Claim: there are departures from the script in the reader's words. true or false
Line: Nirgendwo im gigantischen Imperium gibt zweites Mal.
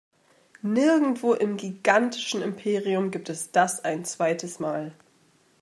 true